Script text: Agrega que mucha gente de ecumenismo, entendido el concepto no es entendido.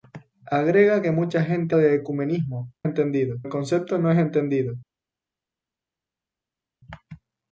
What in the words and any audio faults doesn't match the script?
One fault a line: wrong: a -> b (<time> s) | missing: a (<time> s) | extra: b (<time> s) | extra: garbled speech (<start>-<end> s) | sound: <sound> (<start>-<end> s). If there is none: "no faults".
no faults